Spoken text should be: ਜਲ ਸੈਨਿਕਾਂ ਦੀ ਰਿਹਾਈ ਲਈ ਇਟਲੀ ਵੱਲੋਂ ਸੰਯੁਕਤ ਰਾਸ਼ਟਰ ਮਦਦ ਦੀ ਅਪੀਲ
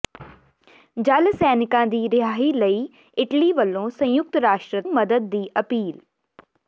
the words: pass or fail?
pass